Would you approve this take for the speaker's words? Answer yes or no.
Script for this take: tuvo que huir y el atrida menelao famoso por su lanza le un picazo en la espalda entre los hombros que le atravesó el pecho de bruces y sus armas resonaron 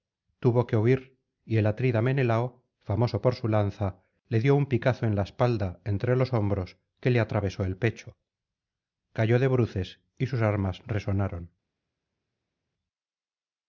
no